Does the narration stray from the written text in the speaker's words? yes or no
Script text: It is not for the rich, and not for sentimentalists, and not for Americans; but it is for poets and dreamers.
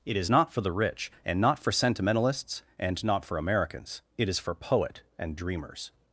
yes